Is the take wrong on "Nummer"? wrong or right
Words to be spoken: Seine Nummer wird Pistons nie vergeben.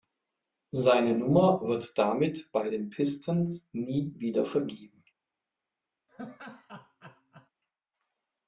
right